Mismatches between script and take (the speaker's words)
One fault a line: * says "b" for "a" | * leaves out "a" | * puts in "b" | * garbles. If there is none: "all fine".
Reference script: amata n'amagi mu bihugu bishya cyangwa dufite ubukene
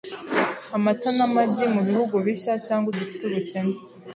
all fine